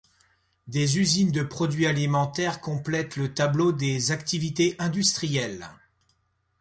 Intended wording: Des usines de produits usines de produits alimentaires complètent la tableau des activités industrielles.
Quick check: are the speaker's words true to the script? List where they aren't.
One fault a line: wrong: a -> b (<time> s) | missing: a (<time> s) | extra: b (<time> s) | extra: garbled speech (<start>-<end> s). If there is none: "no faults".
missing: usines de produits (1.9 s)
wrong: la -> le (3.2 s)